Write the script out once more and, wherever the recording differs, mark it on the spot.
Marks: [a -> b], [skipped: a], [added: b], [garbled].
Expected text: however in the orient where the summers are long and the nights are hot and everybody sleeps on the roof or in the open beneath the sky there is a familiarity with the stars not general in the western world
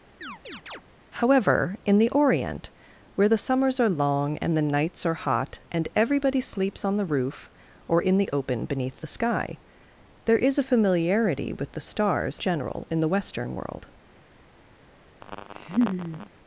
however in the orient where the summers are long and the nights are hot and everybody sleeps on the roof or in the open beneath the sky there is a familiarity with the stars [skipped: not] general in the western world